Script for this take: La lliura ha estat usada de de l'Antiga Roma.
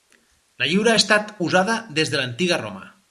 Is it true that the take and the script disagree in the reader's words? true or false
true